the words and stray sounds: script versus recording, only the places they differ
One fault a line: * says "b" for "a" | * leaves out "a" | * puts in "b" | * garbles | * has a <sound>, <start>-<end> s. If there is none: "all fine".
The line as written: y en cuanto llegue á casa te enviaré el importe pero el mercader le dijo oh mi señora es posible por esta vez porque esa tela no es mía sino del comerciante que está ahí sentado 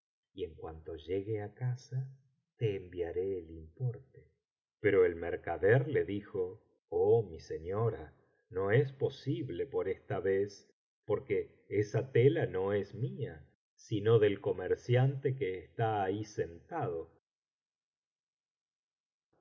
* puts in "no"